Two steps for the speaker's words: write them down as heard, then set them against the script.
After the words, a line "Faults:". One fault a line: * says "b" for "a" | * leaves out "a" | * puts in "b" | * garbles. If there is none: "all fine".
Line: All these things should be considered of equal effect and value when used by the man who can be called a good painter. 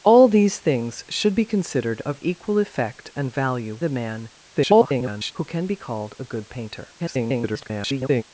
All these things should be considered of equal effect and value the man [garbled] who can be called a good painter. [garbled]
Faults:
* leaves out "when used by"
* garbles
* garbles